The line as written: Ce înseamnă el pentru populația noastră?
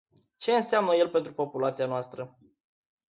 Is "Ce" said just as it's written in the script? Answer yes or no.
yes